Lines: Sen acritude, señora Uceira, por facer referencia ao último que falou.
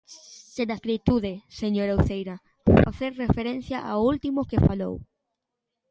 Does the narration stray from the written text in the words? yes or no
no